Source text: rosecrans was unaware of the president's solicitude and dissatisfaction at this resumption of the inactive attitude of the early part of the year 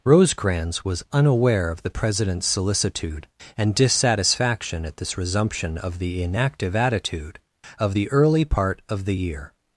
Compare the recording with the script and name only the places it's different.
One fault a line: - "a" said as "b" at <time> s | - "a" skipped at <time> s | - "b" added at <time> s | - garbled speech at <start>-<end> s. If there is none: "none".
none